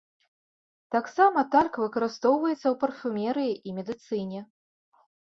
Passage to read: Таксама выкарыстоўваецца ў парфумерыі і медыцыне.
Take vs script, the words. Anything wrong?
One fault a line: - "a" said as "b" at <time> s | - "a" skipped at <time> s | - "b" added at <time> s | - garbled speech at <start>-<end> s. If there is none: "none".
- "тальк" added at 1.6 s